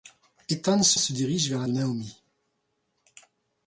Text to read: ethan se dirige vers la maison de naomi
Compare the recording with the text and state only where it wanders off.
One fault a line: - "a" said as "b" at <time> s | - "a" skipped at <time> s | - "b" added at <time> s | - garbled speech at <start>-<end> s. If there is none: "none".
- "se" added at 0.9 s
- "maison" skipped at 1.7 s